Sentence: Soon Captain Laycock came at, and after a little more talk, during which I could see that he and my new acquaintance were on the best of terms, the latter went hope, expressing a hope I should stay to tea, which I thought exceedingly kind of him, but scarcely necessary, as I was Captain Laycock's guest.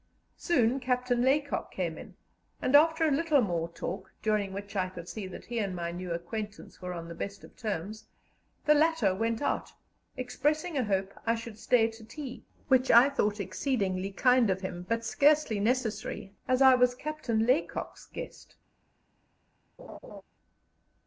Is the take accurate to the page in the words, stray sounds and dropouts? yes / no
no